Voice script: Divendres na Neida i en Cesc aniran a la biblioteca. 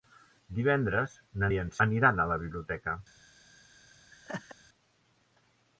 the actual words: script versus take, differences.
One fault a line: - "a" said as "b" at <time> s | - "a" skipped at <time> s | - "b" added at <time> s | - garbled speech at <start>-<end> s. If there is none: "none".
- "Neida" skipped at 1.5 s
- "Cesc" skipped at 1.7 s